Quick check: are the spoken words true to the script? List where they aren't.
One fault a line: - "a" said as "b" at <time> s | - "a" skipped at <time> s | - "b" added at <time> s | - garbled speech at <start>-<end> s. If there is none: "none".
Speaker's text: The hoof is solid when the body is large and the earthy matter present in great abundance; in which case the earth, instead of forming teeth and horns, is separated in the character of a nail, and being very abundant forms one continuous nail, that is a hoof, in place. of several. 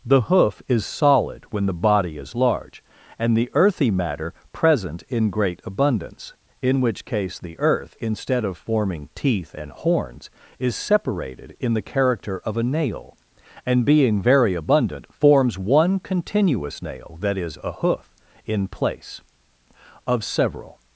none